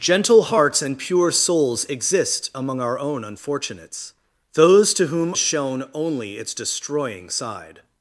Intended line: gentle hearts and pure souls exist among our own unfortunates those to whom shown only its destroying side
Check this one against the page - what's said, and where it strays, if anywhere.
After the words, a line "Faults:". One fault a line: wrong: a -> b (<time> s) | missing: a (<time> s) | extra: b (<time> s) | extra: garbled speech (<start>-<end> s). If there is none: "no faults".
gentle hearts and pure souls exist among our own unfortunates those to whom shown only its destroying side
Faults:
no faults